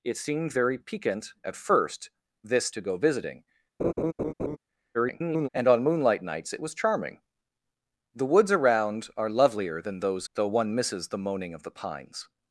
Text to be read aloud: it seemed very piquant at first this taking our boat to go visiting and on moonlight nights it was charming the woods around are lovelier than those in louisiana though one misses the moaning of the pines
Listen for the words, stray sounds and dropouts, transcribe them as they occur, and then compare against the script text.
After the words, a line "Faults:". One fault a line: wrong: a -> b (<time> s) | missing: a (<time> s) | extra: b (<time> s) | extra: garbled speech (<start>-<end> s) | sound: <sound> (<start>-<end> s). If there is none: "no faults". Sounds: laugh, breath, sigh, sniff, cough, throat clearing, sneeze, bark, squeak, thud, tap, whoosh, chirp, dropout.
it seemed very piquant at first this to go visiting [garbled] and on moonlight nights it was charming the woods around are lovelier than those though one misses the moaning of the pines
Faults:
missing: taking our boat (2.7 s)
sound: laugh (3.8-4.6 s)
extra: garbled speech (4.9-5.5 s)
missing: in louisiana (10.3 s)